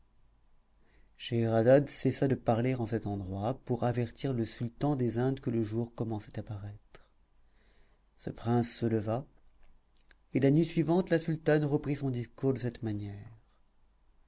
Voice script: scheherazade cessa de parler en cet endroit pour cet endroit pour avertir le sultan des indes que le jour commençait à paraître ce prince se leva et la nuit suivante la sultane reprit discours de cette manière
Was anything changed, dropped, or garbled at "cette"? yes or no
no